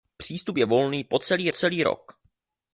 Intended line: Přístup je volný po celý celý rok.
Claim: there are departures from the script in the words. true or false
false